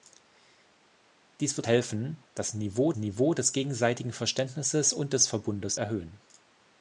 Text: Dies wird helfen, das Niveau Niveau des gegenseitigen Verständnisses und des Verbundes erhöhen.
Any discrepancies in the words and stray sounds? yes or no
no